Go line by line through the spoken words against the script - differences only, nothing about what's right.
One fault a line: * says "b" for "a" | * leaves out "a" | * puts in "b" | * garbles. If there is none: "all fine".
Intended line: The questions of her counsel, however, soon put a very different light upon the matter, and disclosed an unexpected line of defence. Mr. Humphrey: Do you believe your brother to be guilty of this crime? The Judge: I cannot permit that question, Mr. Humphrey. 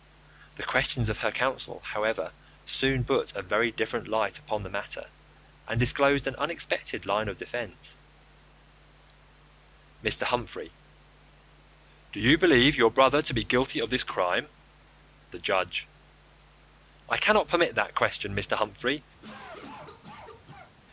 all fine